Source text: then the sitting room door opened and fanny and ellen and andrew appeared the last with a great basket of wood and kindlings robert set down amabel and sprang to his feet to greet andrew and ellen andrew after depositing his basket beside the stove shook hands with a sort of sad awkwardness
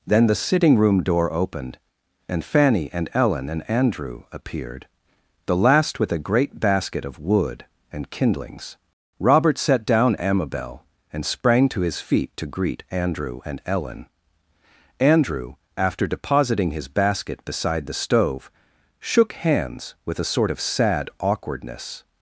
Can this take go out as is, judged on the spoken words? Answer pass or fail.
pass